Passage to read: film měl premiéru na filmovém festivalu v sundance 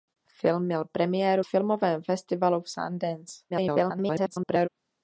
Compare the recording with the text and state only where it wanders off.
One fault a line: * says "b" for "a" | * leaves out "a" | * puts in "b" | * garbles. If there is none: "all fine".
* leaves out "na"
* garbles